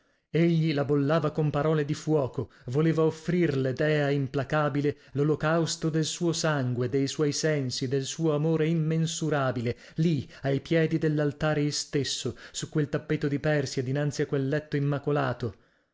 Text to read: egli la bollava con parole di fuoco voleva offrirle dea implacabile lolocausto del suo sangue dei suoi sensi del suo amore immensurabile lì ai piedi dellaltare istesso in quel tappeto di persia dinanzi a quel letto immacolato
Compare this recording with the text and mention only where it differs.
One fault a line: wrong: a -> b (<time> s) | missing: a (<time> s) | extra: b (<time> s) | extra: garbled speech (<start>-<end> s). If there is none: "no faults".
wrong: in -> su (12.5 s)